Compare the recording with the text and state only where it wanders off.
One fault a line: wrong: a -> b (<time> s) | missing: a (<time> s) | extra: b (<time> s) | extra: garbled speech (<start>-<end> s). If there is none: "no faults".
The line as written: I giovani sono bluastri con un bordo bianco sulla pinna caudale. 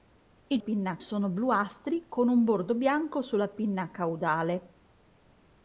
wrong: giovani -> pinna (0.6 s)